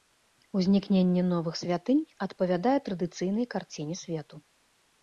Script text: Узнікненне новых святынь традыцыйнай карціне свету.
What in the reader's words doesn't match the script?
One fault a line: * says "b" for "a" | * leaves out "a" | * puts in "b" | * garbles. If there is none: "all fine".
* puts in "адпавядае"